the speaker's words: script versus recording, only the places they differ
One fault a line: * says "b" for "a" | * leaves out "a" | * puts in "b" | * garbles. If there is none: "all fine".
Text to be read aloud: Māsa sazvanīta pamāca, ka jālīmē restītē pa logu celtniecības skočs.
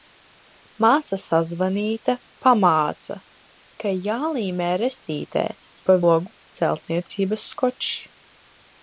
all fine